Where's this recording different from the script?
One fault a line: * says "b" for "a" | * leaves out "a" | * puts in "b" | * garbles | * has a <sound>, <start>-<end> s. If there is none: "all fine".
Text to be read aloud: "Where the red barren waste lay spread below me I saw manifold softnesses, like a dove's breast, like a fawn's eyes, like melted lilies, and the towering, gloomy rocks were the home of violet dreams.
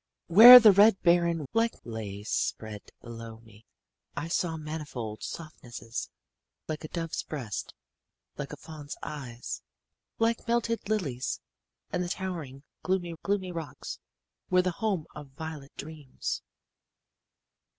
* says "like" for "waste"
* puts in "gloomy"